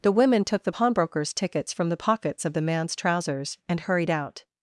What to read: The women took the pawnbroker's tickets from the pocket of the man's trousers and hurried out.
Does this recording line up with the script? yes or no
no